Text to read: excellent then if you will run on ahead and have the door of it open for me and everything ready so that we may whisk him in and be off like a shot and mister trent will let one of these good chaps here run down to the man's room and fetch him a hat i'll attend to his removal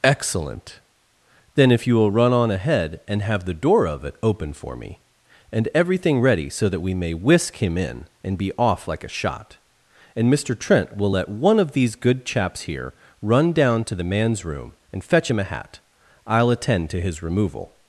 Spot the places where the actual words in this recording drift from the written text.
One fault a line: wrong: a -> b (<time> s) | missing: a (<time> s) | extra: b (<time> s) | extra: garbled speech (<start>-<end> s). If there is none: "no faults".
no faults